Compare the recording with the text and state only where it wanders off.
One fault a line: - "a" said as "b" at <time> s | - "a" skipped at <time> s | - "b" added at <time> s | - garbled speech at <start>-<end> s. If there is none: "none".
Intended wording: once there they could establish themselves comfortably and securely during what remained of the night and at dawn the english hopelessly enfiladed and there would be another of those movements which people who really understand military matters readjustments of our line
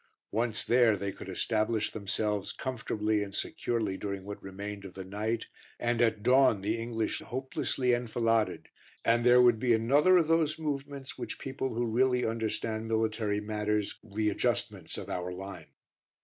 none